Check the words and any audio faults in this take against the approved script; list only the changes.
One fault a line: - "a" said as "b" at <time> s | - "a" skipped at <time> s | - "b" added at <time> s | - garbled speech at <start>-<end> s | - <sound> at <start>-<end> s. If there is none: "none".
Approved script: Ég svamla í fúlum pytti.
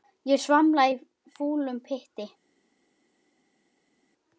none